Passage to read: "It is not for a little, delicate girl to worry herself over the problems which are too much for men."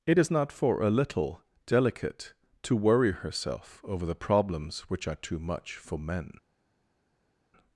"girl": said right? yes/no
no